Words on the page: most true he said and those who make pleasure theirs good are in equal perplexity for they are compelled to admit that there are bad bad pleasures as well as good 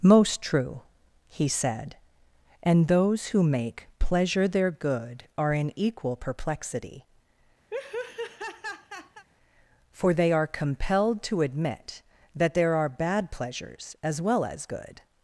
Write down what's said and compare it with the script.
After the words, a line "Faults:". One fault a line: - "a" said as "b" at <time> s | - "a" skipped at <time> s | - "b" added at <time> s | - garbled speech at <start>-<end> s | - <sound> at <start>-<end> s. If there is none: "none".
most true he said and those who make pleasure their good are in equal perplexity for they are compelled to admit that there are bad pleasures as well as good
Faults:
- "theirs" said as "their" at 4.5 s
- laugh at 7.7-9.3 s
- "bad" skipped at 13.3 s